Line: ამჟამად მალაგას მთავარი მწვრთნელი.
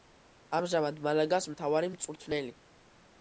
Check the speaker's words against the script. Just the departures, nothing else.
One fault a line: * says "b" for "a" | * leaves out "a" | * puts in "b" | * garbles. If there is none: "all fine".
all fine